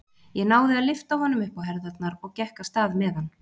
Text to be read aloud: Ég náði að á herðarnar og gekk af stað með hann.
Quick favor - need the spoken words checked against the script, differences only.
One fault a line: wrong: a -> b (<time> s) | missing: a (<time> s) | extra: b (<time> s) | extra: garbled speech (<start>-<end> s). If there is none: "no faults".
extra: lyfta honum upp (0.9 s)